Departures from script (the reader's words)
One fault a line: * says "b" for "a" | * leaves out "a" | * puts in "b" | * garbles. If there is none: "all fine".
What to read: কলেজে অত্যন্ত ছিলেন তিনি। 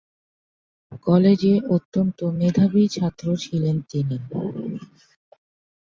* puts in "মেধাবী ছাত্র"